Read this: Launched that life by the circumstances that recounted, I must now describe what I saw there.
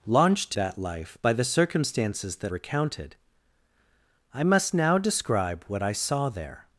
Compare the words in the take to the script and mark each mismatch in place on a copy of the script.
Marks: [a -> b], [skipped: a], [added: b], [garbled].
Launched that life by the circumstances that recounted, I must now describe what I saw there.